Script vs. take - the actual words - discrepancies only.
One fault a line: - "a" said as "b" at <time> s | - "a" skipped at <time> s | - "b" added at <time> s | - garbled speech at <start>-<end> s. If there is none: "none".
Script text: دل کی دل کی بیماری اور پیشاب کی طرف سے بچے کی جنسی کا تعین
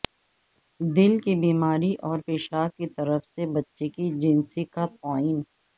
- "دل کی" skipped at 1.4 s